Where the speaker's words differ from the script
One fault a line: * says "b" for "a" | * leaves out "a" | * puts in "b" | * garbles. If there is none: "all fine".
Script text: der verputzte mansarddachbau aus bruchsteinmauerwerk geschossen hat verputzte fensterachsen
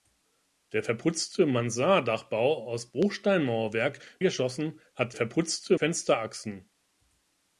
all fine